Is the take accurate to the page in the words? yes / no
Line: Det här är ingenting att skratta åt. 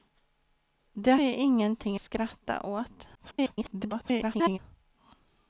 no